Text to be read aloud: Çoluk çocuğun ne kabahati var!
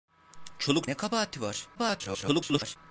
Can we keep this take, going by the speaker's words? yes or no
no